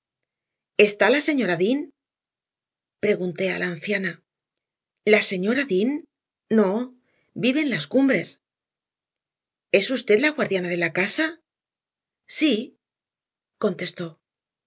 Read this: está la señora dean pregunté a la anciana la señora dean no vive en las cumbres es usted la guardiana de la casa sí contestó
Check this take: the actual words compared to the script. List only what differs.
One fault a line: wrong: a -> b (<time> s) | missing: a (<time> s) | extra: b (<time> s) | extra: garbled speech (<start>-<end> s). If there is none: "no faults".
no faults